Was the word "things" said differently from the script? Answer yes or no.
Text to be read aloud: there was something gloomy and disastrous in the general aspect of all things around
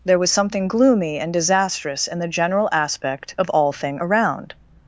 yes